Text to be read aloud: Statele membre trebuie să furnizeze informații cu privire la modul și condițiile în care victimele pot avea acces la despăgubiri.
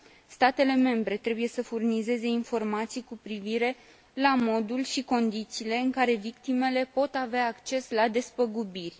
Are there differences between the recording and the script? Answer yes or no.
no